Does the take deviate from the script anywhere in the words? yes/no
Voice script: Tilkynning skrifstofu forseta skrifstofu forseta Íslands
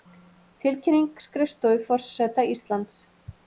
yes